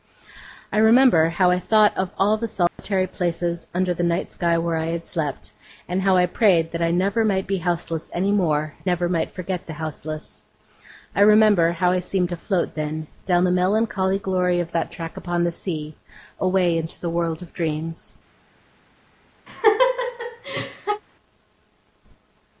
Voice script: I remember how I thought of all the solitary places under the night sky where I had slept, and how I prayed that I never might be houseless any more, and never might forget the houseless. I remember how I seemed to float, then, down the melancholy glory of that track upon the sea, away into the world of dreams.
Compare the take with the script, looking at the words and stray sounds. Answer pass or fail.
fail